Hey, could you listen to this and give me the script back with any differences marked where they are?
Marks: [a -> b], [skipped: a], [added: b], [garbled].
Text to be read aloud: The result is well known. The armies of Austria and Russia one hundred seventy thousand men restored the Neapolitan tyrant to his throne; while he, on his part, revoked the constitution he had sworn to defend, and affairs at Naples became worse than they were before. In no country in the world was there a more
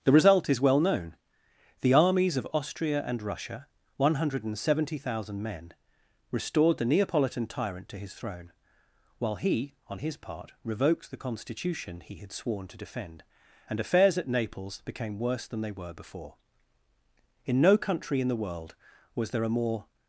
The result is well known. The armies of Austria and Russia one hundred seventy thousand men restored the Neapolitan tyrant to his throne; while he, on his part, revoked the constitution he had sworn to defend, and affairs at Naples became worse than they were before. In no country in the world was there a more